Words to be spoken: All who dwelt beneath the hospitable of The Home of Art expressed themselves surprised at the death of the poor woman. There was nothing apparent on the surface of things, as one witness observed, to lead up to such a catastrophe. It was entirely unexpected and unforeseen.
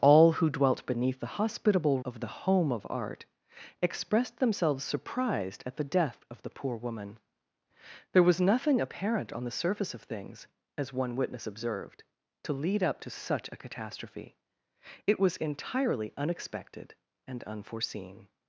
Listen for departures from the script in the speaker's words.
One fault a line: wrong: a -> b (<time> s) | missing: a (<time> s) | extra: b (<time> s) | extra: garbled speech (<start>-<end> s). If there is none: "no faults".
no faults